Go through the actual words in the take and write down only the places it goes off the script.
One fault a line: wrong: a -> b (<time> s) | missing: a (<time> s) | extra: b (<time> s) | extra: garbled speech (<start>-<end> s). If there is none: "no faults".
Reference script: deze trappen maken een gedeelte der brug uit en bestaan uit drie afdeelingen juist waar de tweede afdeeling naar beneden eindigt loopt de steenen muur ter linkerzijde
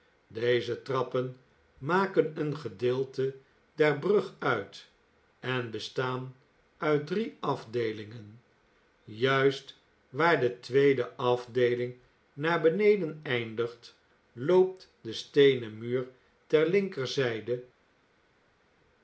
no faults